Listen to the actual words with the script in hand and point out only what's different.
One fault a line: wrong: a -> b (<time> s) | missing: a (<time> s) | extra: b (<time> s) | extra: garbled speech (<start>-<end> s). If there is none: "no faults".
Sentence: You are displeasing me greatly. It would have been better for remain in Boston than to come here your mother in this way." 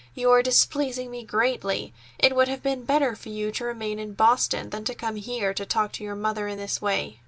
extra: you to (3.3 s)
extra: to talk to (5.5 s)